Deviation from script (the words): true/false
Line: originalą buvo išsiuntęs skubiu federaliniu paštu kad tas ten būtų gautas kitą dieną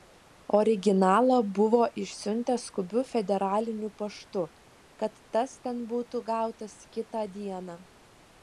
false